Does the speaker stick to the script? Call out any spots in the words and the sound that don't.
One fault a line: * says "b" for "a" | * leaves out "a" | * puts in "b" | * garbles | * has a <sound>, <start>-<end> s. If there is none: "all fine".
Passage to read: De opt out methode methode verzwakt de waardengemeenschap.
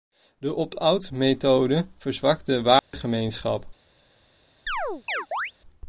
* leaves out "methode"
* has a dropout, 2.8-2.9 s
* has a chirp, 4.7-5.5 s